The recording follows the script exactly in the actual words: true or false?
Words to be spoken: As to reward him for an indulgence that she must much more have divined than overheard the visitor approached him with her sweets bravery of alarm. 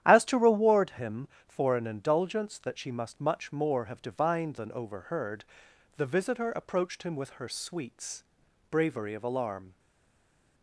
true